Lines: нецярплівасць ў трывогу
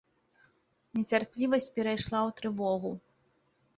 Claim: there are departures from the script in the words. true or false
true